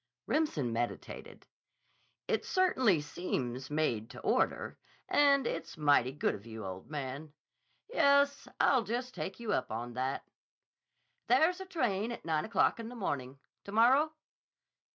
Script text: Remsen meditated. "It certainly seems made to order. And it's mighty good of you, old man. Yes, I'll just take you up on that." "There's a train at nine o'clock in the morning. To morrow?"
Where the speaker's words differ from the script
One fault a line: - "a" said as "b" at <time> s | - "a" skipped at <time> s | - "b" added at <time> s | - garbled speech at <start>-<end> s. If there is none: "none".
none